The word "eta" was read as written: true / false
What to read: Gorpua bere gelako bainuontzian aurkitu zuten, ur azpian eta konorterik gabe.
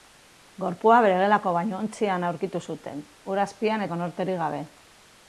false